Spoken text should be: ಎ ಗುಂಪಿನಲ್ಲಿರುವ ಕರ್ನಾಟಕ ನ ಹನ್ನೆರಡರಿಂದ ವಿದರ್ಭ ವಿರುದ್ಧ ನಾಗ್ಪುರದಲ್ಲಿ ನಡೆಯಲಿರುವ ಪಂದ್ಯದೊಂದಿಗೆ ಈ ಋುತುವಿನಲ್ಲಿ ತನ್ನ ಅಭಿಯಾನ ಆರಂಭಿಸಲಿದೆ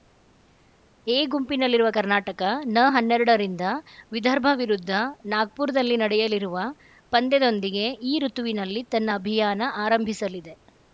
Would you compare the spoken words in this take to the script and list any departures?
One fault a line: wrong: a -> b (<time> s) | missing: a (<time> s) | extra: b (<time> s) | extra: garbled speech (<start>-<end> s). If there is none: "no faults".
no faults